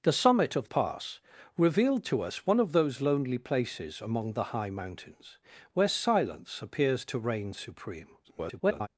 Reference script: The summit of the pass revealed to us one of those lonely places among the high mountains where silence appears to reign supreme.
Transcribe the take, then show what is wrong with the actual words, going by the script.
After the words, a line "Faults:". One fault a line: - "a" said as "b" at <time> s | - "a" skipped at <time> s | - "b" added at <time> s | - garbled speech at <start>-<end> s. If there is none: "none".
The summit of pass revealed to us one of those lonely places among the high mountains where silence appears to reign supreme. [garbled]
Faults:
- "the" skipped at 0.7 s
- garbled speech at 8.2-8.9 s